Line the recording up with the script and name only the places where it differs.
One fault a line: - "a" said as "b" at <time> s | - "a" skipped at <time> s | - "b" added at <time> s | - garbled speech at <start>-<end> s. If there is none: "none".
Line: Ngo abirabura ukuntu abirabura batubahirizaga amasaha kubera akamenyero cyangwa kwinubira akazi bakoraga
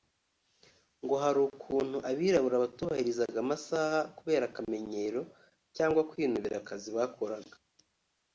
- "abirabura" said as "hari" at 1.2 s